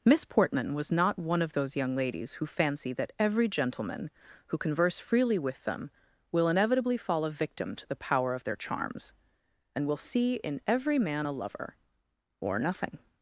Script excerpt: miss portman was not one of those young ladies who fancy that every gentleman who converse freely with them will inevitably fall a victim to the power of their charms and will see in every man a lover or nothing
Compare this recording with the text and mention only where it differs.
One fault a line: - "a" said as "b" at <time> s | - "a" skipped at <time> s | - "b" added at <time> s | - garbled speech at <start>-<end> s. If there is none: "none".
none